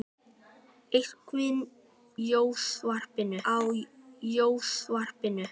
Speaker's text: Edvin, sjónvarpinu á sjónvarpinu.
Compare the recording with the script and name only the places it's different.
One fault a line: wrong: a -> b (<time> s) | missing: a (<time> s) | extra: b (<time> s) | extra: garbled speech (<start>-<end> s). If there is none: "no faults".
no faults